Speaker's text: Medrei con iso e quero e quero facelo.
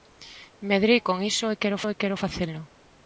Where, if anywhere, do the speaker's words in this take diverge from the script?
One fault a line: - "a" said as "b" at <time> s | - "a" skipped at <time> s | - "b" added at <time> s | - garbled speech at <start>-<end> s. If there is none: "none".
none